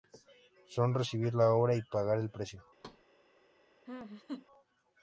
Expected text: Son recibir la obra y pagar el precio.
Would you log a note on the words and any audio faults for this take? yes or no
yes